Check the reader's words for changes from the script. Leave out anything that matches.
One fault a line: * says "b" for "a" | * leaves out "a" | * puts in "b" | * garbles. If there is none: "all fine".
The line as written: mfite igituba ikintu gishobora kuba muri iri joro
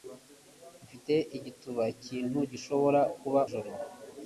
* leaves out "muri iri"